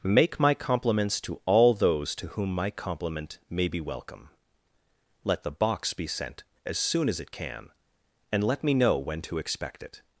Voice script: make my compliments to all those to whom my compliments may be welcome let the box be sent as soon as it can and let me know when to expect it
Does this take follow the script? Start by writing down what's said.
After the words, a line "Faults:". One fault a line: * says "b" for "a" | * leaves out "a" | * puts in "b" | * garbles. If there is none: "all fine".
make my compliments to all those to whom my compliment may be welcome let the box be sent as soon as it can and let me know when to expect it
Faults:
* says "compliment" for "compliments"